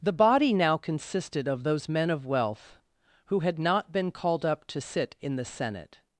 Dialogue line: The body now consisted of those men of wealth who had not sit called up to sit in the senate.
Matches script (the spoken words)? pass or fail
fail